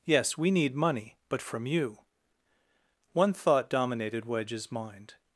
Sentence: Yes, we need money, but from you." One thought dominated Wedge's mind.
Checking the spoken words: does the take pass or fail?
pass